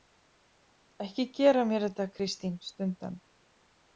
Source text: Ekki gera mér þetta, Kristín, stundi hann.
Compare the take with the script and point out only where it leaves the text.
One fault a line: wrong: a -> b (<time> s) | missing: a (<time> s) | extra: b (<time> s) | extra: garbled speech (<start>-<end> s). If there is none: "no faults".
no faults